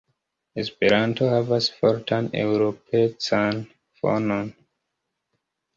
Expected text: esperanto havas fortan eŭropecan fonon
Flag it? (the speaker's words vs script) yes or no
no